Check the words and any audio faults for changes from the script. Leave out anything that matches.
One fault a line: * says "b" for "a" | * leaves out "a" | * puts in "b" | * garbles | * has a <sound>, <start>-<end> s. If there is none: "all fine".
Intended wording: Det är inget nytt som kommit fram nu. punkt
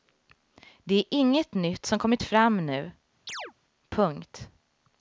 * has a chirp, 3.3-3.5 s